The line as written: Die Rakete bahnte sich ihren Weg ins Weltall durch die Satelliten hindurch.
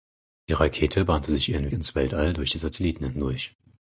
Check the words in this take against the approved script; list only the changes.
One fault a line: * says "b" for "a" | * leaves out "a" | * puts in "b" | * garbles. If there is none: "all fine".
* leaves out "Weg"